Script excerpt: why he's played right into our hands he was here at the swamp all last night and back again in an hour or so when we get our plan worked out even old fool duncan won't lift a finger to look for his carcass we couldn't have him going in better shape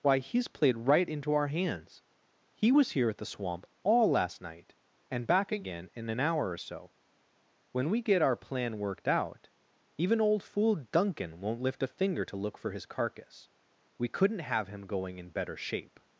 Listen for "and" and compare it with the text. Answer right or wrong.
right